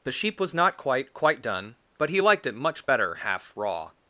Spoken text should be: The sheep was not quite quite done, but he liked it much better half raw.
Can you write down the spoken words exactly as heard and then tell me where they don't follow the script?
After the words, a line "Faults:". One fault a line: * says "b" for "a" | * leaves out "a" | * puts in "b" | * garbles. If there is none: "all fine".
The sheep was not quite quite done, but he liked it much better half raw.
Faults:
all fine